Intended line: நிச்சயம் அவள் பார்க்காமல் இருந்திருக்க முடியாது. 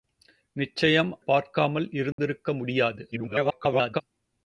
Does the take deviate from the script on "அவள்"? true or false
true